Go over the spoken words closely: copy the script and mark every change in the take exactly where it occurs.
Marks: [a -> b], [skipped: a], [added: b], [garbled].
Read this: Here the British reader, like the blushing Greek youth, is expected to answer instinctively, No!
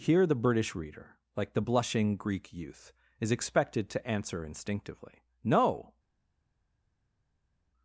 Here the British reader, like the blushing Greek youth, is expected to answer instinctively, No!